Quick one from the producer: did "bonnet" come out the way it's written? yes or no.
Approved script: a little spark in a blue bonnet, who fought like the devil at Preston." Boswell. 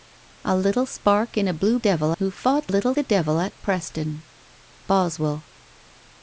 no